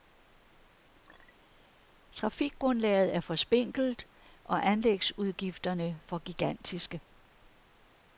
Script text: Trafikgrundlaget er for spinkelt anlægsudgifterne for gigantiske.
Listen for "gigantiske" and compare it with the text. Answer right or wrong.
right